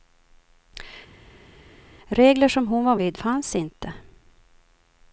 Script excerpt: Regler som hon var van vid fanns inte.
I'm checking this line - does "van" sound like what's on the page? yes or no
no